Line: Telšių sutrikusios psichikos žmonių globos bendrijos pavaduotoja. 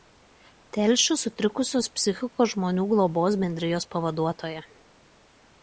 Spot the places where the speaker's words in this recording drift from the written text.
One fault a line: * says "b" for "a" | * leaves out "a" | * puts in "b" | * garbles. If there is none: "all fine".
all fine